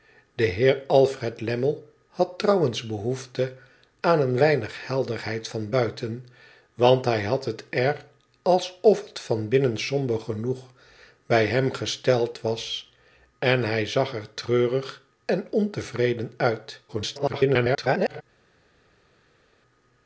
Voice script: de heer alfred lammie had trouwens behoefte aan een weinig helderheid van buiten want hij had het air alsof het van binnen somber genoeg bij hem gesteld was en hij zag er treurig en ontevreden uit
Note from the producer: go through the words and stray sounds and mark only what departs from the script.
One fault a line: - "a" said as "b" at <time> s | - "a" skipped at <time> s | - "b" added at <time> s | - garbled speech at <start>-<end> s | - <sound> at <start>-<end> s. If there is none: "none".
- garbled speech at 16.9-18.2 s